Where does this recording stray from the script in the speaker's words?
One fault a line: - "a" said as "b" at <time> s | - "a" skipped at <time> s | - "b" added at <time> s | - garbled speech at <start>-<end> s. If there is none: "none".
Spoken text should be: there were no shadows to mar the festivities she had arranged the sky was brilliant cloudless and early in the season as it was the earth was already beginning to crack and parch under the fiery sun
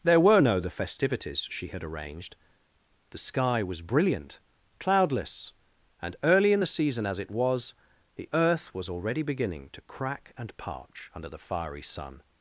- "shadows to mar" skipped at 0.6 s